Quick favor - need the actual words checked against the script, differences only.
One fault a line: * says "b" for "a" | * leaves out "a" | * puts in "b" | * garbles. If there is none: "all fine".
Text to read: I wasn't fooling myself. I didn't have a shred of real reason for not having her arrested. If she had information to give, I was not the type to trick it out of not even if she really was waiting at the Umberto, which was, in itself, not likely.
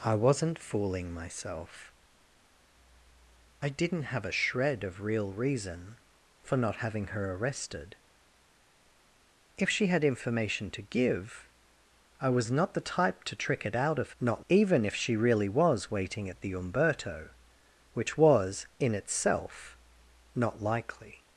all fine